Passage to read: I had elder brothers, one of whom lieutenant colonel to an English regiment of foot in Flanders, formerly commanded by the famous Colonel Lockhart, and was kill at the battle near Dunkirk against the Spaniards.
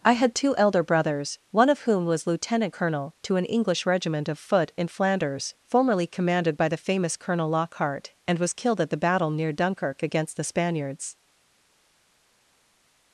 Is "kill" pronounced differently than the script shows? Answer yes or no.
yes